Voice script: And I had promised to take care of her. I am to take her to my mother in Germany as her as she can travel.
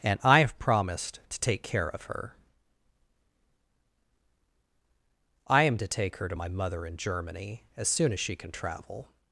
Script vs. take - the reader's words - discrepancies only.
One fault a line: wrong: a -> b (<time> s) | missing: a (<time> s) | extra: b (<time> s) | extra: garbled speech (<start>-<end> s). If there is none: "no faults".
wrong: had -> have (0.4 s)
wrong: her -> soon (7.9 s)